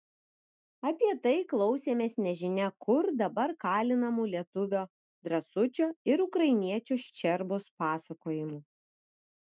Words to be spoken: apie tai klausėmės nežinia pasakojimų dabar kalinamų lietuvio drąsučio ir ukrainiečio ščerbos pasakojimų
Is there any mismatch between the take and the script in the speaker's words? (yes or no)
yes